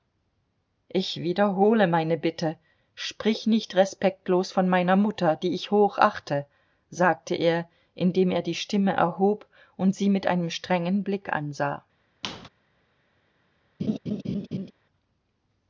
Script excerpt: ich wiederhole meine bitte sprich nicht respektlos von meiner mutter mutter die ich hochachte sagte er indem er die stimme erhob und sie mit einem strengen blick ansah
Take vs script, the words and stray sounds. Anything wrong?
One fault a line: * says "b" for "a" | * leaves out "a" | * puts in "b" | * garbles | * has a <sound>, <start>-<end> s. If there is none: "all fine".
* leaves out "mutter"
* has a squeak, 12.2-12.5 s
* has a laugh, 13.8-14.7 s